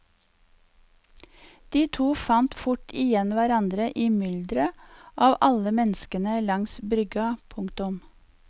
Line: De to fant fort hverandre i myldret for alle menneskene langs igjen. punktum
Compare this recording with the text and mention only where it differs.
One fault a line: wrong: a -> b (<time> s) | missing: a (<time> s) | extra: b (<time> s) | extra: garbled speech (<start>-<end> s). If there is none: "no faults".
extra: igjen (3.0 s)
wrong: for -> av (5.3 s)
wrong: igjen -> brygga (7.0 s)